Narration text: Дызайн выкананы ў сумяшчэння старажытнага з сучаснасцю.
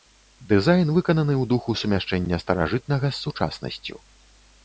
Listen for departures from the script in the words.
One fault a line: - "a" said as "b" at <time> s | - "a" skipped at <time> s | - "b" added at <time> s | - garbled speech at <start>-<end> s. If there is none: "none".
- "духу" added at 1.5 s